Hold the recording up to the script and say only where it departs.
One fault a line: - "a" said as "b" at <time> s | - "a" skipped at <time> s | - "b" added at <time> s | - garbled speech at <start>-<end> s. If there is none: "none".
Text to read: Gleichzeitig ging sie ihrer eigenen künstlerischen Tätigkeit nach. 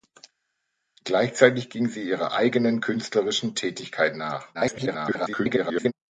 - garbled speech at 4.5-5.9 s